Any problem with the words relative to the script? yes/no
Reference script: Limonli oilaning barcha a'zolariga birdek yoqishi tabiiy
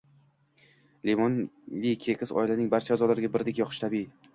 yes